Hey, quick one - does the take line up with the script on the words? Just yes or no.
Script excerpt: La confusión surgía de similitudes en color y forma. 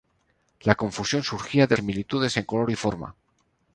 yes